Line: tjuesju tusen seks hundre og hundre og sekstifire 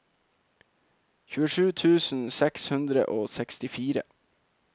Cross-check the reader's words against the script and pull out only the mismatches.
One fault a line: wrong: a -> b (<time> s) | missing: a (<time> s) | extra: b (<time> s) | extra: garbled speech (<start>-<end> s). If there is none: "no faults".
missing: hundre og (3.3 s)